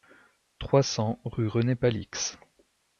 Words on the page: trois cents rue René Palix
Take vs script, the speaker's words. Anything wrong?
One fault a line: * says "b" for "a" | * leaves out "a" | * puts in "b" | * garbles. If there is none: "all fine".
all fine